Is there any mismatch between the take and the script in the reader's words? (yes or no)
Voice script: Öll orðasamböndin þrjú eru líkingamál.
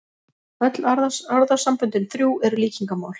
no